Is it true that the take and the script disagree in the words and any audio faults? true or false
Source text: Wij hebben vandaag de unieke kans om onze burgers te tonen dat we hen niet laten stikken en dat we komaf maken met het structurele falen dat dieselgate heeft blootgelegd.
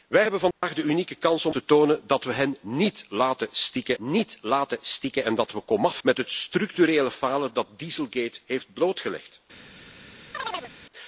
true